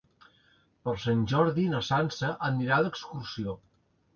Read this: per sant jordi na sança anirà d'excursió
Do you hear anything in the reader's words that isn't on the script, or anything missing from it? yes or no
no